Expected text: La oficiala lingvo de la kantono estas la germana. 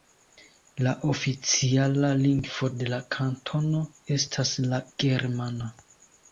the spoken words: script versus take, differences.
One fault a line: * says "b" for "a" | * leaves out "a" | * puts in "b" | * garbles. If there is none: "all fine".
all fine